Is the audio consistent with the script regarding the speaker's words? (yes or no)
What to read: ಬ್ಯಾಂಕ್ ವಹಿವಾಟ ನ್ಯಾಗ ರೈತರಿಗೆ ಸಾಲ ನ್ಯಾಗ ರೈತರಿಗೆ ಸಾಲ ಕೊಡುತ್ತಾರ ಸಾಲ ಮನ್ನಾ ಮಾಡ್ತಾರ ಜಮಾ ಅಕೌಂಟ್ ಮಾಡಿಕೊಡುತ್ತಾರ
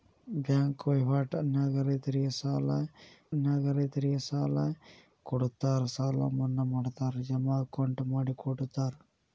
yes